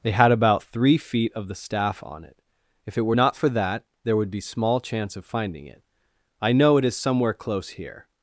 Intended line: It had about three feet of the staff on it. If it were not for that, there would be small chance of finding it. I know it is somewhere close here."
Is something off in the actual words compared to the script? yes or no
yes